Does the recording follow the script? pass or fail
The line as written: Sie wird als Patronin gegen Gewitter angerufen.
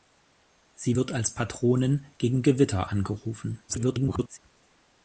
fail